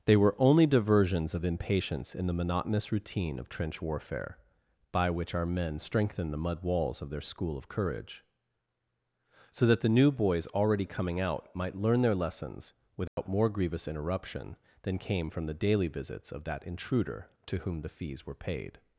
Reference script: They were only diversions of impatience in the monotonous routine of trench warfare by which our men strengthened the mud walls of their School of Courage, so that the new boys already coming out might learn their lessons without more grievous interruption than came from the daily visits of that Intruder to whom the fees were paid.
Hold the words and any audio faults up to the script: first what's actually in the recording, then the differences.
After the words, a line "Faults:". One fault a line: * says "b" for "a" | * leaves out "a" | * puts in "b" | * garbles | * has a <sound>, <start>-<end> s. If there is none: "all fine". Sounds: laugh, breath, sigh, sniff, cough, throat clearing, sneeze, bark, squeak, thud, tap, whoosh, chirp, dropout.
They were only diversions of impatience in the monotonous routine of trench warfare by which our men strengthened the mud walls of their School of Courage, so that the new boys already coming out might learn their lessons without more grievous interruption than came from the daily visits of that Intruder to whom the fees were paid.
Faults:
* has a dropout, 13.1-13.2 s